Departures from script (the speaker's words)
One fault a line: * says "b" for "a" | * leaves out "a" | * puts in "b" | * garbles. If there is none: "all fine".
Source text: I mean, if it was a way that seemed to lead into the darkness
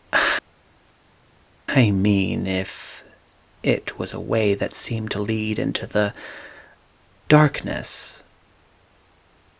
all fine